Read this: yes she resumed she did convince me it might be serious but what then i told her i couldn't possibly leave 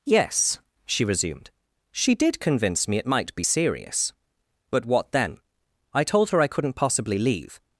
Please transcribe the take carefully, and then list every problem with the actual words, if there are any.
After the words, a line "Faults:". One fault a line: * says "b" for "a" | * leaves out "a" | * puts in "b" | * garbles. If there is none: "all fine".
yes she resumed she did convince me it might be serious but what then i told her i couldn't possibly leave
Faults:
all fine